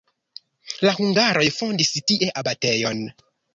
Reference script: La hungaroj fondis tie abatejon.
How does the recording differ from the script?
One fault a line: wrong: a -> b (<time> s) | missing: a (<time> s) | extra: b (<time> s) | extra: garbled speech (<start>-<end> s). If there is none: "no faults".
no faults